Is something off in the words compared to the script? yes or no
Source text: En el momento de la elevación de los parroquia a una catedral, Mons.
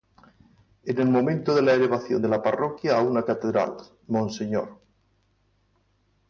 yes